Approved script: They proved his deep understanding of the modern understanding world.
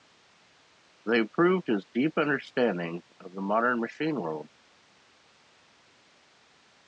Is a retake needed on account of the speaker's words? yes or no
yes